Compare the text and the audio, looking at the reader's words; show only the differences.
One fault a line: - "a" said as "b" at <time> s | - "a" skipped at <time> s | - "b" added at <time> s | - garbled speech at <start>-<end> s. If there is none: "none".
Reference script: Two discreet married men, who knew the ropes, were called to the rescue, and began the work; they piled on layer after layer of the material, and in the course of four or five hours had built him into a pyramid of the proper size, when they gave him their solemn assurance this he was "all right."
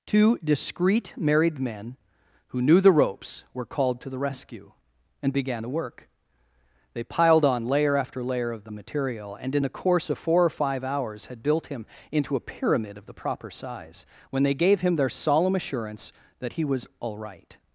- "this" said as "that" at 16.4 s